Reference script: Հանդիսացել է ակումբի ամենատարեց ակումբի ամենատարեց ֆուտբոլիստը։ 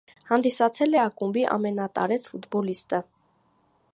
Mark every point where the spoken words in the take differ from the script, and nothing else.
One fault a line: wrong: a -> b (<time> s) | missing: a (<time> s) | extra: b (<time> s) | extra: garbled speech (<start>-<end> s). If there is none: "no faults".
missing: ակումբի ամենատարեց (2.3 s)